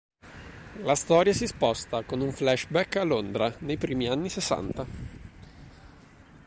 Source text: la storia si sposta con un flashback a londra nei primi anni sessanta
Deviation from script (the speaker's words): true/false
false